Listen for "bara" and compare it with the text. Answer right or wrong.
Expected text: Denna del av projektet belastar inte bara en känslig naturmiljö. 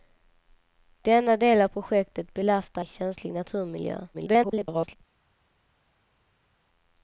wrong